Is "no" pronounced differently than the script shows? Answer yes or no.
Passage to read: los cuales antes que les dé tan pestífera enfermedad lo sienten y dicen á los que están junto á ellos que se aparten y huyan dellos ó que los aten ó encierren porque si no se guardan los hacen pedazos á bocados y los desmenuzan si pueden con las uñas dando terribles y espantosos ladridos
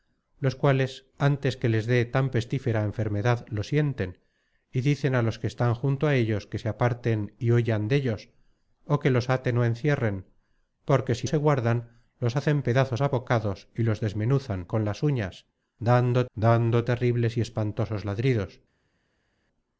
yes